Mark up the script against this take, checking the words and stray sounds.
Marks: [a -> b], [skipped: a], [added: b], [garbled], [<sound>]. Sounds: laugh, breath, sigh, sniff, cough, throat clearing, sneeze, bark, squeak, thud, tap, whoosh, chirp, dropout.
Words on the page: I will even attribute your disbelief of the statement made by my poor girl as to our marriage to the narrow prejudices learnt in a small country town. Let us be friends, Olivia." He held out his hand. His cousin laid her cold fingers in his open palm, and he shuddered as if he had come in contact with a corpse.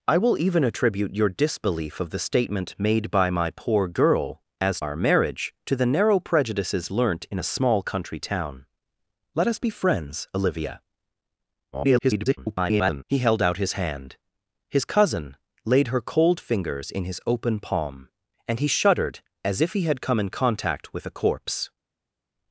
I will even attribute your disbelief of the statement made by my poor girl as [skipped: to] our marriage to the narrow prejudices learnt in a small country town. Let us be friends, Olivia." [garbled] He held out his hand. His cousin laid her cold fingers in his open palm, and he shuddered as if he had come in contact with a corpse.